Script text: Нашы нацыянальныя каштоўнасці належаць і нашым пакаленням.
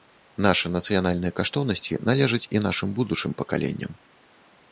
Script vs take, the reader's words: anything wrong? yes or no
yes